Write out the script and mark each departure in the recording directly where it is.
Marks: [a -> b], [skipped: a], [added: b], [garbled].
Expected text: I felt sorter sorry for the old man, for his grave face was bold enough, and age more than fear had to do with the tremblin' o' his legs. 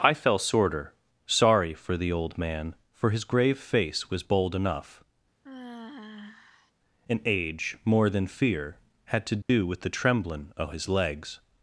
I [felt -> fell] sorter sorry for the old man, for his grave face was bold enough, and age more than fear had to do with the tremblin' o' his legs.